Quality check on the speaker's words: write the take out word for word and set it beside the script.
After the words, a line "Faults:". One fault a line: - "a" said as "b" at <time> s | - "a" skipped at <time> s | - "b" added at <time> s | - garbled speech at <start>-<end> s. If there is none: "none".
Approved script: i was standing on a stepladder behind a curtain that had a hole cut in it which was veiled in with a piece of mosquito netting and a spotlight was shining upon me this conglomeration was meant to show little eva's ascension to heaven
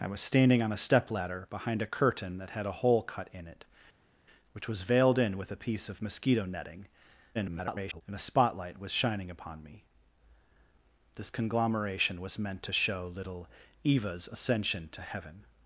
i was standing on a stepladder behind a curtain that had a hole cut in it which was veiled in with a piece of mosquito netting [garbled] and a spotlight was shining upon me this conglomeration was meant to show little eva's ascension to heaven
Faults:
- garbled speech at 7.3-8.0 s